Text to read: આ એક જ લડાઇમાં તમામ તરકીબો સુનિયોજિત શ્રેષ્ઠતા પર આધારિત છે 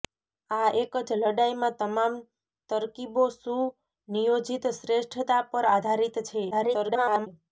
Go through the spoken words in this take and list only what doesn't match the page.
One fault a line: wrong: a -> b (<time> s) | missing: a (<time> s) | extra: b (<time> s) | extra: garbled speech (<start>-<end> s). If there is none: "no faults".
extra: garbled speech (6.5-7.3 s)